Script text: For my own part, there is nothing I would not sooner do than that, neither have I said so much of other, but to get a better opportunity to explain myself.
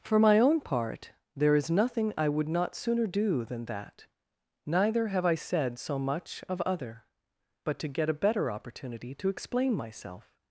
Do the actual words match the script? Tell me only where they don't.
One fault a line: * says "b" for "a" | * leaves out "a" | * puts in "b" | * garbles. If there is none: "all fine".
all fine